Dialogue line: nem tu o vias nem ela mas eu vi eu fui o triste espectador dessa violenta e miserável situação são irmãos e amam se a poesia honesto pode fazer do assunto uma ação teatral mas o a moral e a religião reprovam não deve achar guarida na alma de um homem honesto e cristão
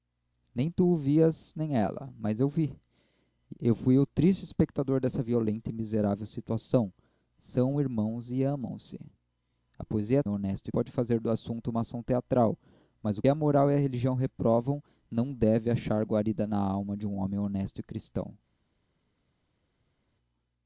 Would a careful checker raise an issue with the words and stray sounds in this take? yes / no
no